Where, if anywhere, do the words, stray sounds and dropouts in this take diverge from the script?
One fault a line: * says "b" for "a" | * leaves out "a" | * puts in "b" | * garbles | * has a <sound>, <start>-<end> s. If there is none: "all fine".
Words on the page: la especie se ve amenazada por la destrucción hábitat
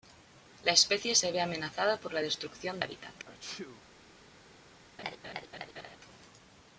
* has a sneeze, 3.3-3.9 s
* has a laugh, 5.0-6.0 s